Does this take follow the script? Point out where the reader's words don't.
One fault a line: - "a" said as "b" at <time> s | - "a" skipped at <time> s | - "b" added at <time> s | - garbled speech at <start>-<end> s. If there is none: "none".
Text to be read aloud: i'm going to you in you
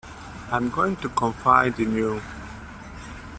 - "you" said as "confide" at 1.1 s